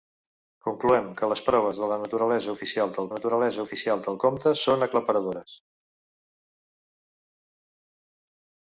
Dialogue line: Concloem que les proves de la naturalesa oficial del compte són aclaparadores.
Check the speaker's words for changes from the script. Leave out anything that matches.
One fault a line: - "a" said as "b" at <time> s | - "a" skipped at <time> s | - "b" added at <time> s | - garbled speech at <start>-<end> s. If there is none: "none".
- "naturalesa oficial del" added at 3.1 s